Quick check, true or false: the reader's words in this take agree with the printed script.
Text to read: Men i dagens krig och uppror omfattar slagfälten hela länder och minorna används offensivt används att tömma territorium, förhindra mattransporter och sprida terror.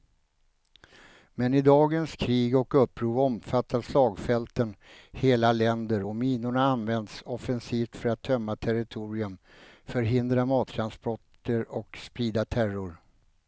false